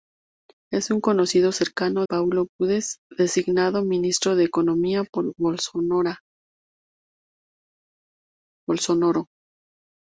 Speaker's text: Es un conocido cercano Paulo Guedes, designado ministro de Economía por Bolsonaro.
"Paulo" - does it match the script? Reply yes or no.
yes